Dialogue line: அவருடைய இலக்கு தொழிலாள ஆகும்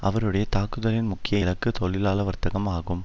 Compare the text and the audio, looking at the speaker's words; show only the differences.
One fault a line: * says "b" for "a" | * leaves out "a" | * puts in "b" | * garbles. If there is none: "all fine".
* puts in "தாக்குதலின் முக்கிய"
* puts in "வர்த்தகம்"